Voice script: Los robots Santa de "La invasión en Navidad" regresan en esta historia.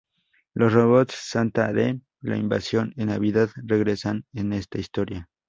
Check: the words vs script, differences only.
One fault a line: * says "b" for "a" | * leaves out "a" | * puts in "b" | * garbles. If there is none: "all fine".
all fine